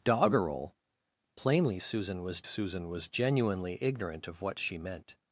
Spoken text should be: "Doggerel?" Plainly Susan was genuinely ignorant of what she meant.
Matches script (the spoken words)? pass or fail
fail